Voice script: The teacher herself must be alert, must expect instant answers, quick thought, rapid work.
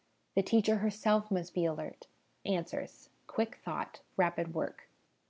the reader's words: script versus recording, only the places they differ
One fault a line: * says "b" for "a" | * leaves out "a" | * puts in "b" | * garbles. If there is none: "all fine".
* leaves out "must expect instant"